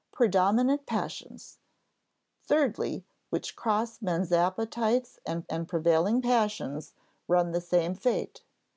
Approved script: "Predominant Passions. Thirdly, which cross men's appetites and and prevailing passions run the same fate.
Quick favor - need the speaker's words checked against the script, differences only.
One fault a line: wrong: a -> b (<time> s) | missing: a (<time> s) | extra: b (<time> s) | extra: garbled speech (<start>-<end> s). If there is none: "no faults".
no faults